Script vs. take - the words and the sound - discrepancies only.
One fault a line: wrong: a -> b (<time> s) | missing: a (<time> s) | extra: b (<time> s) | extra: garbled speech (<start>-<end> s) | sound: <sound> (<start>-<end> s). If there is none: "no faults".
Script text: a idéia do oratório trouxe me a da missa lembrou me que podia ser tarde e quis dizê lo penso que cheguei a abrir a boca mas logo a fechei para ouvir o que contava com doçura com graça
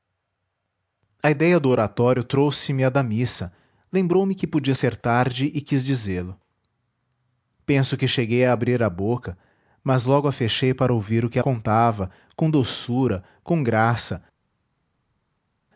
no faults